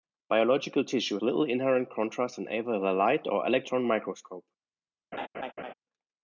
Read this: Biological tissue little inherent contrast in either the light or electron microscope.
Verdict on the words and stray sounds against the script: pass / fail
fail